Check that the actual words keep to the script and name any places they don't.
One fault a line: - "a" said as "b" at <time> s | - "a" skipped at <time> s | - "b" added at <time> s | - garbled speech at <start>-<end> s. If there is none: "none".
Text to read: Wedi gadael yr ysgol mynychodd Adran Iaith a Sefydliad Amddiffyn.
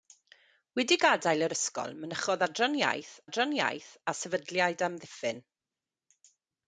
- "Adran Iaith" added at 3.2 s